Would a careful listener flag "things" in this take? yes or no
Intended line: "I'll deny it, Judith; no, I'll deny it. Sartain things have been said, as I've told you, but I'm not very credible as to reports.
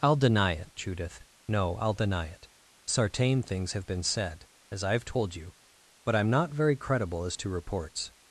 no